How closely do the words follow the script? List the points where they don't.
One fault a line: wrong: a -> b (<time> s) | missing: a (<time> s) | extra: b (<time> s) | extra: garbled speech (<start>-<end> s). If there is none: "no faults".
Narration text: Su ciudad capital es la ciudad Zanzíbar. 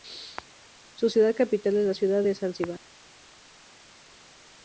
extra: de (2.2 s)